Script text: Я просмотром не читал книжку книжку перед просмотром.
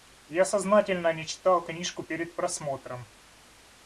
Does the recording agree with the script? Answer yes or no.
no